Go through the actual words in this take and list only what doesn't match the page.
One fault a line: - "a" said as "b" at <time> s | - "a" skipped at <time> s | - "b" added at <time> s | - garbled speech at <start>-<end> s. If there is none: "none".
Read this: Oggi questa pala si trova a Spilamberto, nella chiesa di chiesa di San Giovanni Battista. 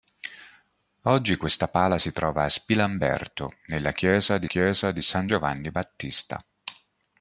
none